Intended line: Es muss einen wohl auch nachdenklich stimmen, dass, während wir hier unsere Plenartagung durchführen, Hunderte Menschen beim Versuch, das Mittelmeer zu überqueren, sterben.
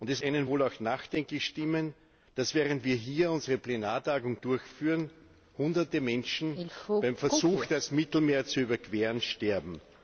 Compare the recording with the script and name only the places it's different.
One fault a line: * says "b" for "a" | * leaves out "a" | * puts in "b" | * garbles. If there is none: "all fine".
* leaves out "muss"